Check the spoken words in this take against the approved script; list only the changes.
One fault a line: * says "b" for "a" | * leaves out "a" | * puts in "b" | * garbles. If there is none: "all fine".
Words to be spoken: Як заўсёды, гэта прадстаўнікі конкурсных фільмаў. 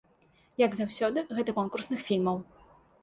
* leaves out "прадстаўнікі"